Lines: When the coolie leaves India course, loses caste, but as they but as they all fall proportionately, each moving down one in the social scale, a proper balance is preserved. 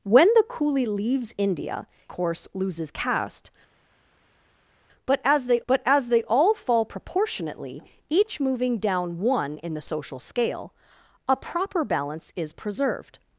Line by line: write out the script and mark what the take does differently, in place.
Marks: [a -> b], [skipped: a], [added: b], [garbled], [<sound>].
When the coolie leaves India course, loses caste, but as they but as they all fall proportionately, each moving down one in the social scale, a proper balance is preserved.